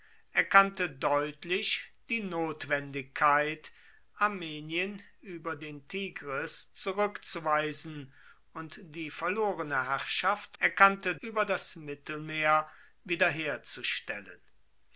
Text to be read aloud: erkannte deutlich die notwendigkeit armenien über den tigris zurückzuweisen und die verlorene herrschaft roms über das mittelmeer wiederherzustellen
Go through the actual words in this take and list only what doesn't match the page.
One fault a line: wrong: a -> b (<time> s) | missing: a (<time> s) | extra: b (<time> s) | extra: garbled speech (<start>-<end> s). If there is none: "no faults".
wrong: roms -> erkannte (10.6 s)